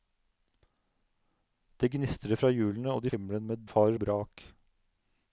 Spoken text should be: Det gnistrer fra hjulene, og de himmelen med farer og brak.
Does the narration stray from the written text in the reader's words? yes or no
no